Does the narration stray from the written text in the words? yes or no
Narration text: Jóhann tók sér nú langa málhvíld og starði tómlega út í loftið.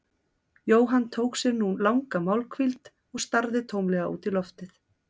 no